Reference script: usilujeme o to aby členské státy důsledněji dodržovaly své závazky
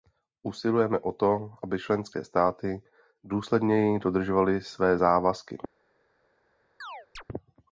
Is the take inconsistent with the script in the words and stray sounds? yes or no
yes